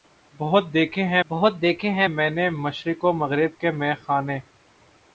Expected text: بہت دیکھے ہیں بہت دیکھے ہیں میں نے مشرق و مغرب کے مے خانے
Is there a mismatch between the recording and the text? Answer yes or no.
no